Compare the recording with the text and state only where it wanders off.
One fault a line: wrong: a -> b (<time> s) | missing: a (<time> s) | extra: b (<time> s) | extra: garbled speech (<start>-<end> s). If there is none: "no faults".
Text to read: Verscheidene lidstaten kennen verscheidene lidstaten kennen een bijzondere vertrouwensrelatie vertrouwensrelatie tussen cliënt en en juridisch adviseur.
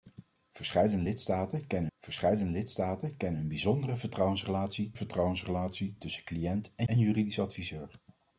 no faults